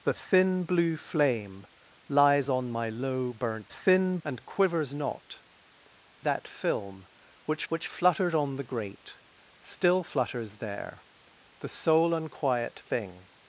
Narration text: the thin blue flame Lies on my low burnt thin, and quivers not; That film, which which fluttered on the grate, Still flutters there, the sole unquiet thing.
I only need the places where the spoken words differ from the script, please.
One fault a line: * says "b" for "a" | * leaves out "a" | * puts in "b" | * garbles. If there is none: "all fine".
all fine